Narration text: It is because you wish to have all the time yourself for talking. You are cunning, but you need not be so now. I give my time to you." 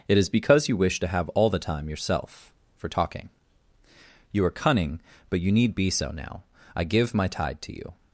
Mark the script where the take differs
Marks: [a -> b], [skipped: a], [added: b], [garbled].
It is because you wish to have all the time yourself for talking. You are cunning, but you need [skipped: not] be so now. I give my [time -> tide] to you."